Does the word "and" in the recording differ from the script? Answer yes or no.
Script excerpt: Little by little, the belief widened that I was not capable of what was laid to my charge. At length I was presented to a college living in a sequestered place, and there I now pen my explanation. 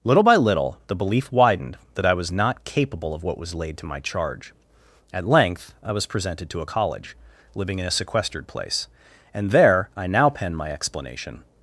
no